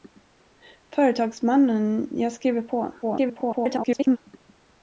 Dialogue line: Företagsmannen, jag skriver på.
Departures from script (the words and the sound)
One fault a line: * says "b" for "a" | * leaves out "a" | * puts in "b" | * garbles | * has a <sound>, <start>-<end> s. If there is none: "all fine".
* garbles